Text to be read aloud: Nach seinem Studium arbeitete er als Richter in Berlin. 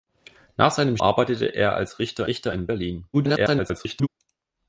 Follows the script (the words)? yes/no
no